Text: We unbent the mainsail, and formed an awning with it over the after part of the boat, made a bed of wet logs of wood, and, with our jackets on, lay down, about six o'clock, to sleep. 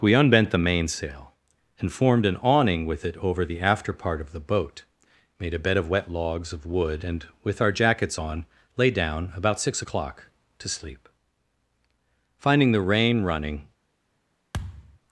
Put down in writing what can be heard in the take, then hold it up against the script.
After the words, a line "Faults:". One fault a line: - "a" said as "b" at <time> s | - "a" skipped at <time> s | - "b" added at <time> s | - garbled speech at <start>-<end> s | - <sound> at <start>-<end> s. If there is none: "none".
We unbent the mainsail, and formed an awning with it over the after part of the boat, made a bed of wet logs of wood, and, with our jackets on, lay down, about six o'clock, to sleep. Finding the rain running
Faults:
- "Finding the rain running" added at 12.4 s
- thud at 14.5-15.0 s